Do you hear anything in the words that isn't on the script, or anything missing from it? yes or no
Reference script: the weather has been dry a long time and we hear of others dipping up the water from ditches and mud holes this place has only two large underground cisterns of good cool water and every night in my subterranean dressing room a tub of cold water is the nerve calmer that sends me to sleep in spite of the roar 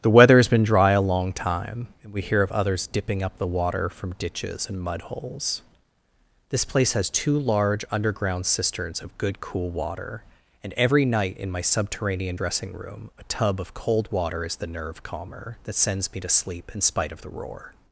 yes